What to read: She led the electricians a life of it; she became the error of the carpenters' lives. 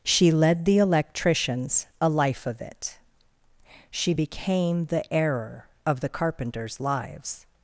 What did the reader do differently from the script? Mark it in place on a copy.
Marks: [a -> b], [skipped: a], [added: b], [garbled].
She led the electricians a life of it; she became the error of the carpenters' lives.